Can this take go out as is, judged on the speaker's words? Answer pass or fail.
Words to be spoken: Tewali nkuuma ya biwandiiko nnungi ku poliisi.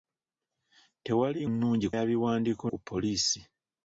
fail